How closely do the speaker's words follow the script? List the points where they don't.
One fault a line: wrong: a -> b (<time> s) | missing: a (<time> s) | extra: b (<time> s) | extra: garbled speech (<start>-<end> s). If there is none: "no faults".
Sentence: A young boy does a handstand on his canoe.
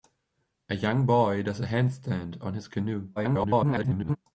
extra: garbled speech (3.2-4.2 s)